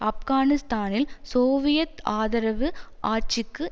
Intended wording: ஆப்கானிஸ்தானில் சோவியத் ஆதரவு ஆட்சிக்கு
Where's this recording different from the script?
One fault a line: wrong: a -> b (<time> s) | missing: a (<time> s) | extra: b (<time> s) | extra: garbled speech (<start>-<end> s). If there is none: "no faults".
no faults